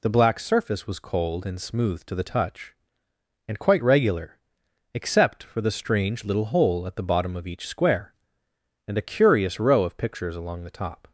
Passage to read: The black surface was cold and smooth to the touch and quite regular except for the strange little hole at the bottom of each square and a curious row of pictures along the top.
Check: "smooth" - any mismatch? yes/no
no